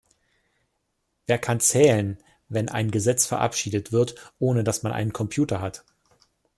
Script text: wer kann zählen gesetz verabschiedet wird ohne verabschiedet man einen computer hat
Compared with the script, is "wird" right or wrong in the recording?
right